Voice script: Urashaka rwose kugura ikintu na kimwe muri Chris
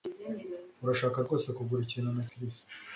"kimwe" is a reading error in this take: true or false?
true